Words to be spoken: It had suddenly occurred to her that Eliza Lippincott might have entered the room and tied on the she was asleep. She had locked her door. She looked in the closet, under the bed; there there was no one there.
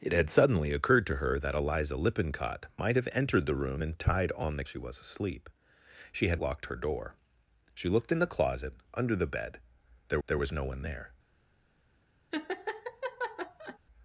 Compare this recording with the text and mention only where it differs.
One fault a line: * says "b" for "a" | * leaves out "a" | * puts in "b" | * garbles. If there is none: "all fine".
all fine